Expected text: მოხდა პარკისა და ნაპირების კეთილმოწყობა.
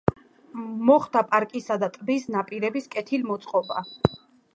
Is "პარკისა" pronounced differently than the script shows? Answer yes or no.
no